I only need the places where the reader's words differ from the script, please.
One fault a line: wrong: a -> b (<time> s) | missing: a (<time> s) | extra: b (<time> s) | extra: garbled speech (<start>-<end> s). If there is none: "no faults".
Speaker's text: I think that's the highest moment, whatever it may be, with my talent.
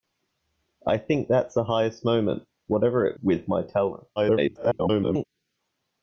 missing: may be (3.2 s)
extra: garbled speech (4.2-5.2 s)